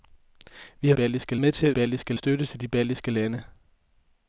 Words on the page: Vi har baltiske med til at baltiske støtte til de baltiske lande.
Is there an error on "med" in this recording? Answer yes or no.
no